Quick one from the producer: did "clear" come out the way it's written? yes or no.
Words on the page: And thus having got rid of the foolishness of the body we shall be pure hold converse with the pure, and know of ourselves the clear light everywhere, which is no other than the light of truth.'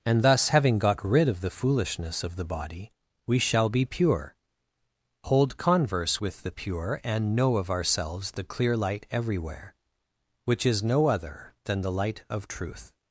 yes